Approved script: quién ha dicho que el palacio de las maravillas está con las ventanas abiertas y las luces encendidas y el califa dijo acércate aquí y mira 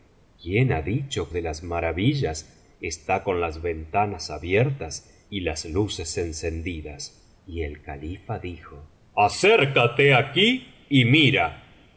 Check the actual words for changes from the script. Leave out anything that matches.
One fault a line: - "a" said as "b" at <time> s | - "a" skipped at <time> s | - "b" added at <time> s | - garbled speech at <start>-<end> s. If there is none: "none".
- "que el palacio" skipped at 1.3 s